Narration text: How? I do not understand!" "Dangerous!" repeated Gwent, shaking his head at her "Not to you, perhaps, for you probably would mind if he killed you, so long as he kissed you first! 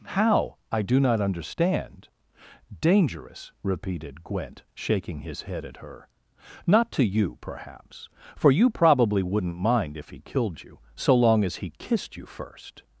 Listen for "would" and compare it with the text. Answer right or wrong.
wrong